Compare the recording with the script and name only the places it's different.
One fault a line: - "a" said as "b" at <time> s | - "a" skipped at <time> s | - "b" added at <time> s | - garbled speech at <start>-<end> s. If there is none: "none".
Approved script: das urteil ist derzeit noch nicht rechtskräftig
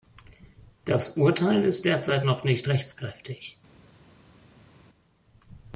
none